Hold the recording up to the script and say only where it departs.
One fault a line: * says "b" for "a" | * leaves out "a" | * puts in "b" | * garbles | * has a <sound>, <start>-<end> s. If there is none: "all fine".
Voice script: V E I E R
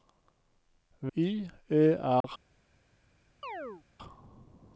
* leaves out "E"
* has a dropout, 2.2-2.2 s
* has a chirp, 3.4-3.8 s